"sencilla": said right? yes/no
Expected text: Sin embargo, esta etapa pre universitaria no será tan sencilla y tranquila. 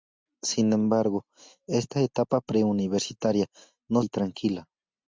no